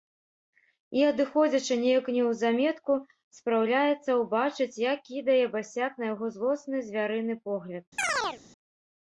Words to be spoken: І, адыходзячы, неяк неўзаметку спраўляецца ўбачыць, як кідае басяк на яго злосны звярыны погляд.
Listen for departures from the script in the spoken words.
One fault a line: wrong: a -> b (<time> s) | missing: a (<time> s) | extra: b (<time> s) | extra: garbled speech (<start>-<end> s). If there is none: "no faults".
no faults